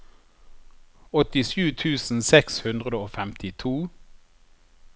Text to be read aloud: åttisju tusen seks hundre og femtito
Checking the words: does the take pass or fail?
pass